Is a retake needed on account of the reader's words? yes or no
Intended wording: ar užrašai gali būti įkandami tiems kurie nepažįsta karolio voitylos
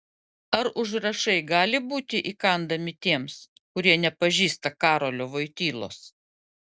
no